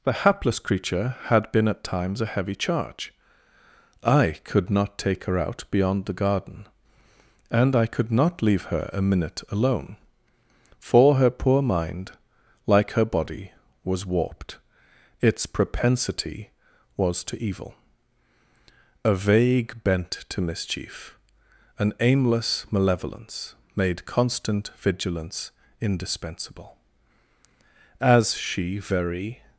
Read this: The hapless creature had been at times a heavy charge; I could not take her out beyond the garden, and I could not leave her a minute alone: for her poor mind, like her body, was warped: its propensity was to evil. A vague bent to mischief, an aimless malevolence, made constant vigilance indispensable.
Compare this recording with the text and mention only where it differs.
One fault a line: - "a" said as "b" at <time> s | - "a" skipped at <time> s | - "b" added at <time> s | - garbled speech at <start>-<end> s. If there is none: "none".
- "As she very" added at 28.0 s